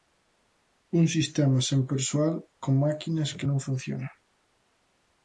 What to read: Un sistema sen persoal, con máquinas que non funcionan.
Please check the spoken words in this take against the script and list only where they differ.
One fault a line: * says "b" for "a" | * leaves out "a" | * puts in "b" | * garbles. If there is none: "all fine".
all fine